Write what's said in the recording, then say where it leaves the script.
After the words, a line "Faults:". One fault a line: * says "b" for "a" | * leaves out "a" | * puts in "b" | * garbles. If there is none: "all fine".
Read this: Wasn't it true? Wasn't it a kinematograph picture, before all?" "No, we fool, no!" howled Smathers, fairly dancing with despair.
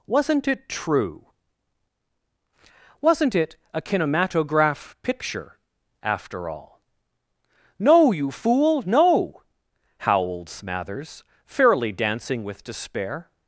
Wasn't it true? Wasn't it a kinematograph picture, after all?" "No, you fool, no!" howled Smathers, fairly dancing with despair.
Faults:
* says "after" for "before"
* says "you" for "we"